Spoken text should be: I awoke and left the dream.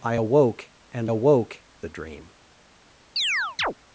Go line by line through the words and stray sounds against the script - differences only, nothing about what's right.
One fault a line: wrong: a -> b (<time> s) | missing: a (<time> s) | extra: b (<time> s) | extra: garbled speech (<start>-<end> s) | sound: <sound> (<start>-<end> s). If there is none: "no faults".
wrong: left -> awoke (1.0 s)
sound: chirp (3.2-3.7 s)